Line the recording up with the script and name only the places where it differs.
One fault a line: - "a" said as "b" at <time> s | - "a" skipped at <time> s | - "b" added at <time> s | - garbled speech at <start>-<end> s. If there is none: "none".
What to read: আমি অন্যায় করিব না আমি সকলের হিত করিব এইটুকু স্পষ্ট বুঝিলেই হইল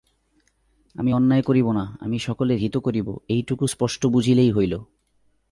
none